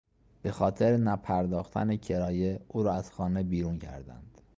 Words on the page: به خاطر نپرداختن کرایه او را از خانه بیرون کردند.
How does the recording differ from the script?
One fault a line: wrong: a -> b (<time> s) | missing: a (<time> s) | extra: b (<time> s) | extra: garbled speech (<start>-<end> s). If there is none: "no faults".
no faults